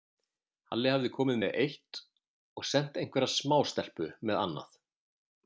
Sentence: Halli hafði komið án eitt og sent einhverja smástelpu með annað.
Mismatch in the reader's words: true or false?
true